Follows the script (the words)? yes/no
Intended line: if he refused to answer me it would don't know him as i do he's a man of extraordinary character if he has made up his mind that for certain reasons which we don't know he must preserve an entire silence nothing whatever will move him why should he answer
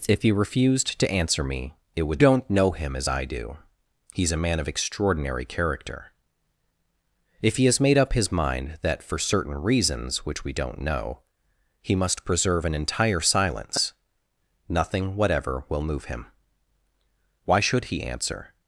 yes